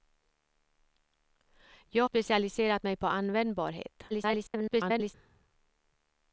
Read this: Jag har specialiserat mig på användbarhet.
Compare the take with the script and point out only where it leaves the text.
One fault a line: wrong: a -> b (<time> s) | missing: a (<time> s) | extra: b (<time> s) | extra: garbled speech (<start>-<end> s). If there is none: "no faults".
missing: har (2.0 s)
extra: garbled speech (4.1-5.1 s)